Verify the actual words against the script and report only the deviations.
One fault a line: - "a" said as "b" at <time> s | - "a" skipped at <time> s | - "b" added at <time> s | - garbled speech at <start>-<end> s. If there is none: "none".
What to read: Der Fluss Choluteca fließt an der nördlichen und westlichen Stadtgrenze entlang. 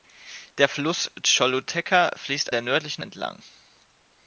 - "an" skipped at 2.5 s
- "und westlichen Stadtgrenze" skipped at 3.0 s